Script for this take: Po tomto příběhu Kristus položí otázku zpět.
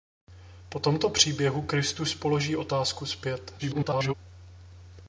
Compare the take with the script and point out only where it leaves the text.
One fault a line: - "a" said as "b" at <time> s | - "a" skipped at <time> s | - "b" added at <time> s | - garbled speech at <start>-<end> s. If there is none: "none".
- garbled speech at 3.6-4.1 s